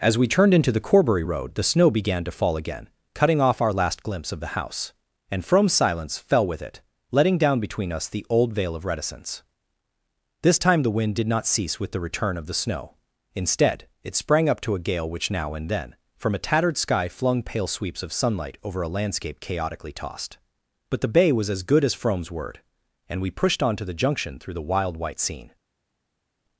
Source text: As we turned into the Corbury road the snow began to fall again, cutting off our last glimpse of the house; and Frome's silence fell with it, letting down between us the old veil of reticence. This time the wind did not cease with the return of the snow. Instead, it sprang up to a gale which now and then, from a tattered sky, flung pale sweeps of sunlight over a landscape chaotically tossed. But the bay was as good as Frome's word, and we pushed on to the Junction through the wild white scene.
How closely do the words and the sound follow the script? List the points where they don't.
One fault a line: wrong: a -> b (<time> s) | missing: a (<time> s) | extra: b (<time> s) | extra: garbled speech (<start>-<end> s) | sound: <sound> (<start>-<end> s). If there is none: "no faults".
no faults